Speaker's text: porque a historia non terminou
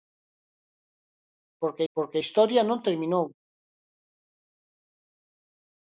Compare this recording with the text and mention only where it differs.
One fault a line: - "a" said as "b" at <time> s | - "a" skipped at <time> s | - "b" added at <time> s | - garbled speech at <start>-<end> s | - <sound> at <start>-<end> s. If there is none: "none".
- "porque" added at 1.9 s